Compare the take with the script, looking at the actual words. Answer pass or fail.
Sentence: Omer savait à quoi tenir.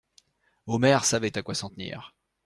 fail